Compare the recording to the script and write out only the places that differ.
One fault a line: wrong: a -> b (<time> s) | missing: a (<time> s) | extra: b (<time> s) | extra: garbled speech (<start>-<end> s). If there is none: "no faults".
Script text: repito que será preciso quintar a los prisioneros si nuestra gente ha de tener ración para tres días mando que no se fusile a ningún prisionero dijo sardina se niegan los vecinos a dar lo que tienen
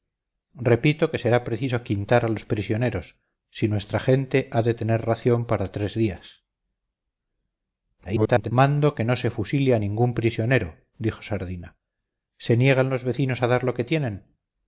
extra: garbled speech (8.0-8.5 s)